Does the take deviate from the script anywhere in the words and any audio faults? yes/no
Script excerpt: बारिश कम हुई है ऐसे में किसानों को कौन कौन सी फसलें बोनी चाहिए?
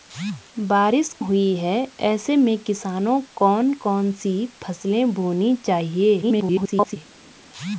yes